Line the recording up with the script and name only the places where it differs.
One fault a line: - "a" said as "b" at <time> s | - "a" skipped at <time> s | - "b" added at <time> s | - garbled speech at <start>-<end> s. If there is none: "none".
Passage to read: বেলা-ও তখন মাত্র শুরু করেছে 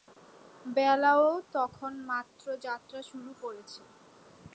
- "যাত্রা" added at 2.6 s